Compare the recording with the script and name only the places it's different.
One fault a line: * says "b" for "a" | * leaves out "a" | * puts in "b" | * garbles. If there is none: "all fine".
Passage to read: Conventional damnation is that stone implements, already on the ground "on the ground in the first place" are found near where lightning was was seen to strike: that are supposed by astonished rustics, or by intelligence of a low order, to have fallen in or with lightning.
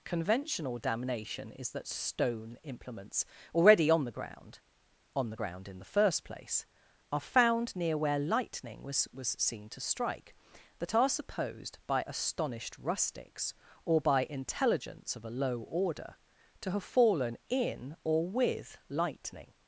all fine